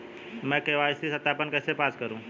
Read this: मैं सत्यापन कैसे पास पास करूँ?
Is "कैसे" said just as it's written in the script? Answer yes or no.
yes